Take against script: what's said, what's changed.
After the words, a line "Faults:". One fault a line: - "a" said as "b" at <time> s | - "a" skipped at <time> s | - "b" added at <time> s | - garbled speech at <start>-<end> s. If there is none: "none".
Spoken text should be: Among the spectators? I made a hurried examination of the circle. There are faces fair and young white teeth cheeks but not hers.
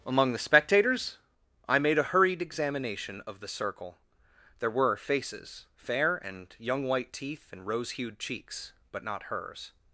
Among the spectators? I made a hurried examination of the circle. There were faces fair and young white teeth and rose hued cheeks but not hers.
Faults:
- "are" said as "were" at 4.7 s
- "and rose hued" added at 7.5 s